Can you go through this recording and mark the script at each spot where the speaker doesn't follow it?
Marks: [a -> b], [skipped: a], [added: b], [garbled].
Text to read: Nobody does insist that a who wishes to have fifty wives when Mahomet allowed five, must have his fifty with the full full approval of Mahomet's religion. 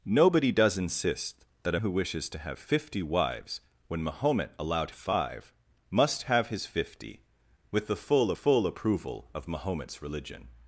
Nobody does insist that a who wishes to have fifty wives when Mahomet allowed five, must have his fifty with the full full approval of Mahomet's religion.